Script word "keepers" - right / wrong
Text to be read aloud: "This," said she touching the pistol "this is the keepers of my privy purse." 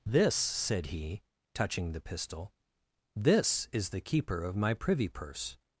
wrong